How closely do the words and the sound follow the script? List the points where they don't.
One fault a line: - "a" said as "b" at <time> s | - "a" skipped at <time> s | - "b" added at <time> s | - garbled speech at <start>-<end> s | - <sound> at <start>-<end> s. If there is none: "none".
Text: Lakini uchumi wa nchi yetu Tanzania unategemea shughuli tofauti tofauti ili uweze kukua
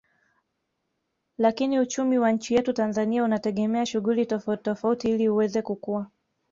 none